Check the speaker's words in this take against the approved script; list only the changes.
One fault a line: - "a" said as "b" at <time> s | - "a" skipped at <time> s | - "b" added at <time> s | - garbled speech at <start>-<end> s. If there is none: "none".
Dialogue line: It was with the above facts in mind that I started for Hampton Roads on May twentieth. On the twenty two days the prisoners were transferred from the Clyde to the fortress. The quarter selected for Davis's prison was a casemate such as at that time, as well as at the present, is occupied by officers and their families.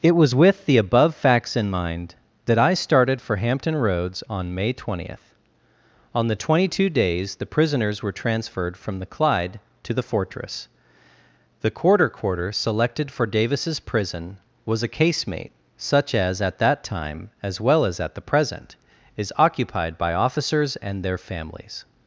- "quarter" added at 12.1 s